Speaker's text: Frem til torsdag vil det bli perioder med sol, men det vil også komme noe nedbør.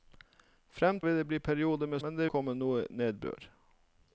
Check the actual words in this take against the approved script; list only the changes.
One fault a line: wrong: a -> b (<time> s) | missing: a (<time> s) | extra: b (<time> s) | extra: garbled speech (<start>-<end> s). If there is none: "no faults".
missing: til torsdag (1.0 s)
missing: sol (2.0 s)
missing: vil også (2.3 s)